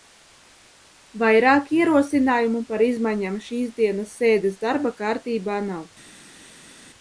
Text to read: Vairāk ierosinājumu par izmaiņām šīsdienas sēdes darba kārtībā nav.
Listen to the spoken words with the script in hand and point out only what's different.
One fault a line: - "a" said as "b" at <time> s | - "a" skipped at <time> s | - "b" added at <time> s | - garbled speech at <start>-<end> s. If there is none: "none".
none